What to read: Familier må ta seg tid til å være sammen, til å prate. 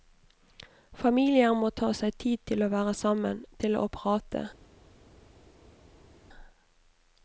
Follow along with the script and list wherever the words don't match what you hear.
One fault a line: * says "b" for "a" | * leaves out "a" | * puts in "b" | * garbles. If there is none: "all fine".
all fine